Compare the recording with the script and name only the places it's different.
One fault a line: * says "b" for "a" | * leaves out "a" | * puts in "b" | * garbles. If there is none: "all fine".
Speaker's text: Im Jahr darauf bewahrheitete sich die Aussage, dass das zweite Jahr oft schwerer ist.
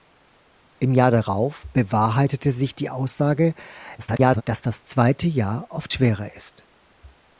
* garbles